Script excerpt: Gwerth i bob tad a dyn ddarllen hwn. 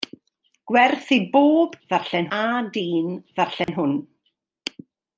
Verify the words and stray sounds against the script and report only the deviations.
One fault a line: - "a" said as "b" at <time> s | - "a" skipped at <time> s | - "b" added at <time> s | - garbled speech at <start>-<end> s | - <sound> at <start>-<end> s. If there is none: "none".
- "tad" said as "ddarllen" at 1.9 s
- dropout at 3.6-3.7 s